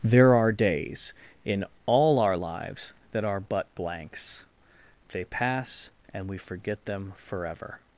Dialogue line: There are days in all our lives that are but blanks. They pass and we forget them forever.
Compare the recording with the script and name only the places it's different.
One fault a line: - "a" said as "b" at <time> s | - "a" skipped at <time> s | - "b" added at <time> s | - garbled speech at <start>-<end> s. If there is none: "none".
none